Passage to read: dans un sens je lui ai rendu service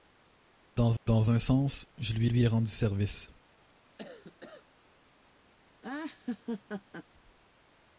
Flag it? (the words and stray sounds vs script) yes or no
yes